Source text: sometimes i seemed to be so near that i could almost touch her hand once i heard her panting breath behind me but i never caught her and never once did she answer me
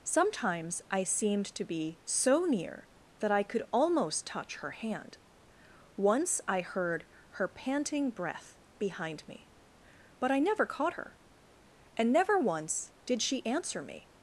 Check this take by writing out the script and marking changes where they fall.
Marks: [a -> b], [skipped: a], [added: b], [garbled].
sometimes i seemed to be so near that i could almost touch her hand once i heard her panting breath behind me but i never caught her and never once did she answer me